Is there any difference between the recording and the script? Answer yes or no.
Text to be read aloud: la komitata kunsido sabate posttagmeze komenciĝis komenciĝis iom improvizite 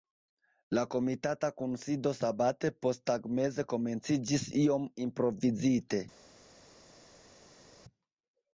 yes